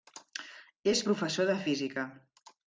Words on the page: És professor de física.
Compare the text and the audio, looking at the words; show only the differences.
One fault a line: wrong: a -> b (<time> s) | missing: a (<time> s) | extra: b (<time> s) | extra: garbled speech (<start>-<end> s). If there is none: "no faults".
no faults